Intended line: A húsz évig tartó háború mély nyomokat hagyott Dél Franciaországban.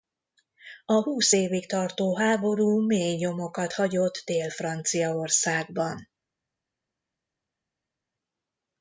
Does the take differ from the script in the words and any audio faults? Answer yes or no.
no